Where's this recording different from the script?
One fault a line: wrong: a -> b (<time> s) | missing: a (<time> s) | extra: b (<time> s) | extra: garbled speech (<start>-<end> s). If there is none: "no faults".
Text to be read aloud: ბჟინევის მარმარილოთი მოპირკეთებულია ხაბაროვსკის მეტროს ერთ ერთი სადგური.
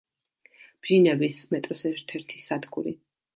missing: მარმარილოთი მოპირკეთებულია ხაბაროვსკის (1.4 s)